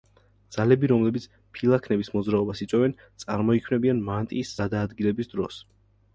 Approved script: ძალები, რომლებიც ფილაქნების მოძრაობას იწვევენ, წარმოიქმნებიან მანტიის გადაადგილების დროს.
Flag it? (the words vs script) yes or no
no